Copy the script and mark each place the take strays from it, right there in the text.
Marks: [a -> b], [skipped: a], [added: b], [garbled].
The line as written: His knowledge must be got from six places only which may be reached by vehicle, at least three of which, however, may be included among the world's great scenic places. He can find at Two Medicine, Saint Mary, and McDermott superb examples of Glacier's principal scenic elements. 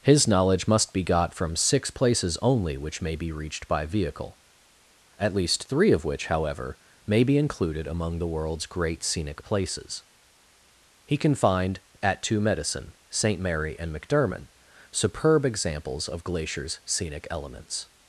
His knowledge must be got from six places only which may be reached by vehicle, at least three of which, however, may be included among the world's great scenic places. He can find at Two Medicine, Saint Mary, and McDermott superb examples of Glacier's [skipped: principal] scenic elements.